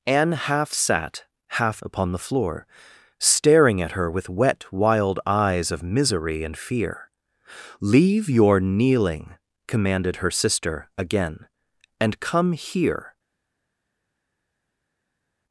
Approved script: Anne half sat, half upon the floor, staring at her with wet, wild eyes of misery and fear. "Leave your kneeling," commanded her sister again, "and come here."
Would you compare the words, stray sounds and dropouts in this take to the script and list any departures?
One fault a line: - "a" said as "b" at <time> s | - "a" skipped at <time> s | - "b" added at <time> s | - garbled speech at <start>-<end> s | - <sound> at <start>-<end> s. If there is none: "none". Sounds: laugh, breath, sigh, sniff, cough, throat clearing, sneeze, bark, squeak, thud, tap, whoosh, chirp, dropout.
none